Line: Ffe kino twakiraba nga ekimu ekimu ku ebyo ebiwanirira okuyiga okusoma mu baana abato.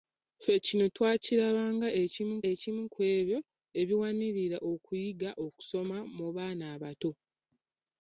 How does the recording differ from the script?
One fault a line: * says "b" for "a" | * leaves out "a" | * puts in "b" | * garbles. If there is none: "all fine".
all fine